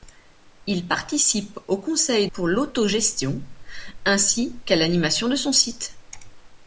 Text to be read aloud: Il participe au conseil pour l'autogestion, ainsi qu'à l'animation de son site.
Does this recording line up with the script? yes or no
yes